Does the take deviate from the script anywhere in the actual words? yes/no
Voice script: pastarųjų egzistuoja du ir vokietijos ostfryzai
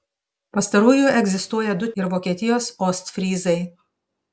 no